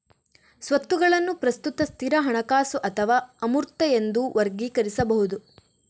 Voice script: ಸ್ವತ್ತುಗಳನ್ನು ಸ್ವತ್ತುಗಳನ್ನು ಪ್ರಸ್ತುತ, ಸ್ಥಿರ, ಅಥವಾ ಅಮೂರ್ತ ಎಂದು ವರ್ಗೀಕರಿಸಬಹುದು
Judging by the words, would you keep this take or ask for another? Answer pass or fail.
fail